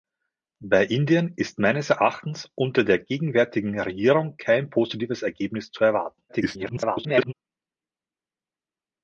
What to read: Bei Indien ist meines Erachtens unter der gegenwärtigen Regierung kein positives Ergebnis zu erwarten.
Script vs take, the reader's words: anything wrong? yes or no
yes